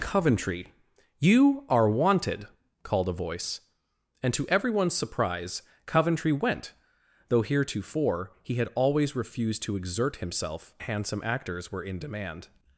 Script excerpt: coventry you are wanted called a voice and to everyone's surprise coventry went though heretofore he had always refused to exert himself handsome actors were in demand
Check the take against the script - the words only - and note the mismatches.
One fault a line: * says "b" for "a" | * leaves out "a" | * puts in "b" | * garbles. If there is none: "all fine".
all fine